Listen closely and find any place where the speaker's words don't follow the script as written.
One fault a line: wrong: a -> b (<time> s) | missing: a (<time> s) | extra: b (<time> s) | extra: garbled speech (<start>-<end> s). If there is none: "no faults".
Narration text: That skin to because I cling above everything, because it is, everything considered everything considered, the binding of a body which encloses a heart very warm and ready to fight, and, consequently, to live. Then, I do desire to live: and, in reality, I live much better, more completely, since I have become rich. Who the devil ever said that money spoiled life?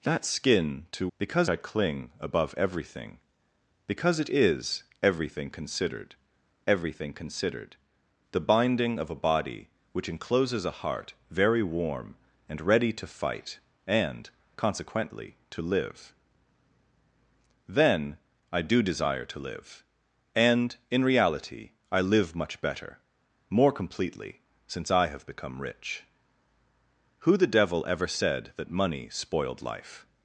no faults